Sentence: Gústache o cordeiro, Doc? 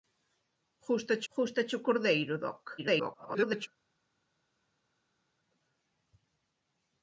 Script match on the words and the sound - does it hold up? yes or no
no